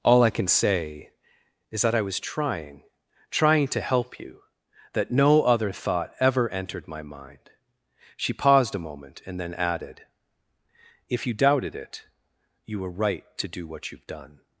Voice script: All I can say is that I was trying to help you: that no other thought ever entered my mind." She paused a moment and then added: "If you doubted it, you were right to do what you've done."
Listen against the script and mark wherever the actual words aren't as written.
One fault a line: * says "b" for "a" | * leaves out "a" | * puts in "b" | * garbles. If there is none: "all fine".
* puts in "trying"